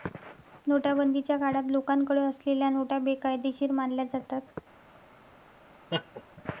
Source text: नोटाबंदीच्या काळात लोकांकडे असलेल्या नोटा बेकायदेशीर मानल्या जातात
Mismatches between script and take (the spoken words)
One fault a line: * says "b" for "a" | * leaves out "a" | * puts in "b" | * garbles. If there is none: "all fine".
all fine